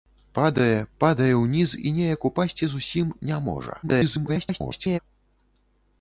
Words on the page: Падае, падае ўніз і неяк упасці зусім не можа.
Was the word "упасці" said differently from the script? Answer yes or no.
no